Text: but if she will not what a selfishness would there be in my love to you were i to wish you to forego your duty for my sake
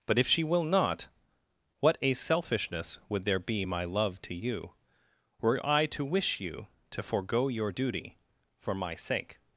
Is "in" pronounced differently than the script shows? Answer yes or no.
yes